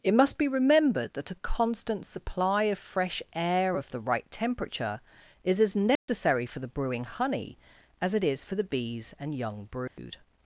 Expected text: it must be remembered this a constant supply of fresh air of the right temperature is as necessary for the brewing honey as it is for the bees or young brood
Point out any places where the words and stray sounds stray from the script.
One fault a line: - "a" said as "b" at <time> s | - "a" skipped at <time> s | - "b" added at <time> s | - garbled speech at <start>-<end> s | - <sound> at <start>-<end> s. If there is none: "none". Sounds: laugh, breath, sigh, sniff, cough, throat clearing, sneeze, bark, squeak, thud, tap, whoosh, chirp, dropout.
- "this" said as "that" at 1.1 s
- dropout at 6.0-6.1 s
- "or" said as "and" at 9.2 s
- dropout at 9.9-10.0 s